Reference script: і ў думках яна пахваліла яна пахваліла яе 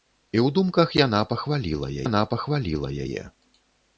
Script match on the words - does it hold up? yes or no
yes